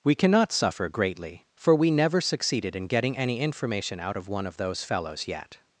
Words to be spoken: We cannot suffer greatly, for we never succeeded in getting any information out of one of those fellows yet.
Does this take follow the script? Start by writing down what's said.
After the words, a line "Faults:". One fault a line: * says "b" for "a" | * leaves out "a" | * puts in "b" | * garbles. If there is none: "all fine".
We cannot suffer greatly, for we never succeeded in getting any information out of one of those fellows yet.
Faults:
all fine